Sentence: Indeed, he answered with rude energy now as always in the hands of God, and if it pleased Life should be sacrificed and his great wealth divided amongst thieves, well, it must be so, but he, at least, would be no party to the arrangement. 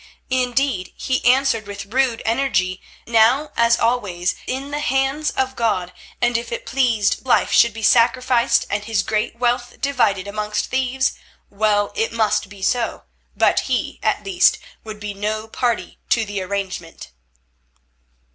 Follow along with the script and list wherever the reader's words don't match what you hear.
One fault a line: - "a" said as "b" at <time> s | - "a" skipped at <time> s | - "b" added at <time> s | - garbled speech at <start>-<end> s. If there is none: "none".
none